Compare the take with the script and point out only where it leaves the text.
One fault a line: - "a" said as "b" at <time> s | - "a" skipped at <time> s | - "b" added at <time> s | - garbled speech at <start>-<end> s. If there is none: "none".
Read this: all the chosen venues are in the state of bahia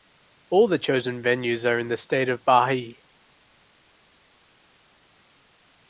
none